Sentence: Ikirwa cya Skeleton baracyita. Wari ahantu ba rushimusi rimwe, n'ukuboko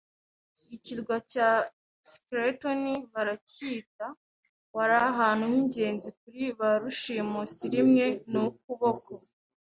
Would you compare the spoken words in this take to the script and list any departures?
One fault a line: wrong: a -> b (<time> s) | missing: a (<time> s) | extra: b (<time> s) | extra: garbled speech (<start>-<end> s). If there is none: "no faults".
extra: h'ingenzi kuri (5.5 s)